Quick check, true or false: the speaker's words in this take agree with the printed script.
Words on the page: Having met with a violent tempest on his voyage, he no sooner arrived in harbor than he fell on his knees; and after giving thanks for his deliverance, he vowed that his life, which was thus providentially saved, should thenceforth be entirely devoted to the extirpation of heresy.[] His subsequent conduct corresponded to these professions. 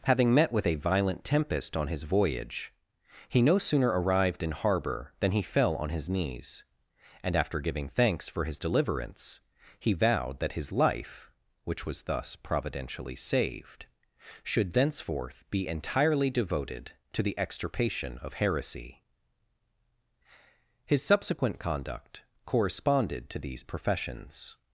true